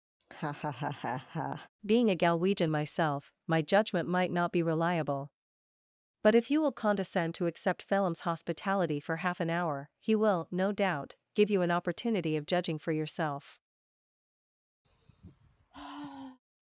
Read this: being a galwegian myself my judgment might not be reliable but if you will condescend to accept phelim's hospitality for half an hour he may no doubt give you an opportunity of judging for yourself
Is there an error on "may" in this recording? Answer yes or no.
yes